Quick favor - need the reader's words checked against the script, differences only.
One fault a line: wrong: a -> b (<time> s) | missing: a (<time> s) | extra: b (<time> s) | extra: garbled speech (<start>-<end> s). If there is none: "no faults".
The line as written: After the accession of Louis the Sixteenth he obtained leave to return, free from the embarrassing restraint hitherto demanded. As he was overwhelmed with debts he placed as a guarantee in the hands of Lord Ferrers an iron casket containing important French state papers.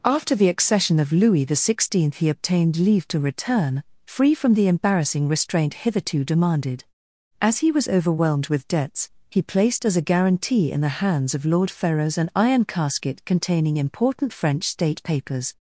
no faults